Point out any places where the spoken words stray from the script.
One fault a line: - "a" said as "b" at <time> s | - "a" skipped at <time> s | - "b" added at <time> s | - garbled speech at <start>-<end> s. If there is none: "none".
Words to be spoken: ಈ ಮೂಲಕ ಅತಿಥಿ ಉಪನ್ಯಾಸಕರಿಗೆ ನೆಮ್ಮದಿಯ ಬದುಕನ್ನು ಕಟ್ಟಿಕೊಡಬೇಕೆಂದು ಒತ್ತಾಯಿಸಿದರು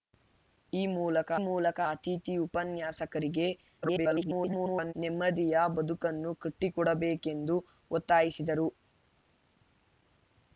- "ಮೂಲಕ" added at 1.4 s
- garbled speech at 3.8-4.9 s